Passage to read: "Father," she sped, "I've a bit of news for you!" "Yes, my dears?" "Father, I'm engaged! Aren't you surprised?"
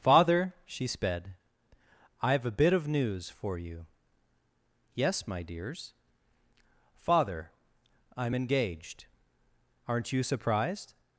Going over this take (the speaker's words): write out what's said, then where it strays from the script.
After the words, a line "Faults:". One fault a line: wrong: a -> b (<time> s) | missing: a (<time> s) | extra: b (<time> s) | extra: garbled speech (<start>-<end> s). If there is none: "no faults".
"Father," she sped, "I've a bit of news for you!" "Yes, my dears?" "Father, I'm engaged! Aren't you surprised?"
Faults:
no faults